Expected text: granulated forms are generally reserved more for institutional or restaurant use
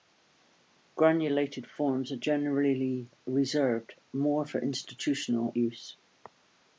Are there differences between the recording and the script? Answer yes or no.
yes